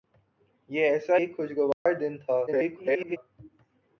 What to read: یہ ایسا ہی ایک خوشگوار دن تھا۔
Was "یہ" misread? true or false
false